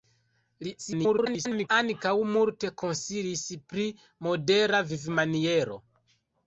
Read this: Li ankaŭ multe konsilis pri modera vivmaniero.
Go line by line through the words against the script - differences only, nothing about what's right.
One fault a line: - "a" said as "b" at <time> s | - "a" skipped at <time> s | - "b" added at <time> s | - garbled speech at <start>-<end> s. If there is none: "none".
- garbled speech at 0.8-1.7 s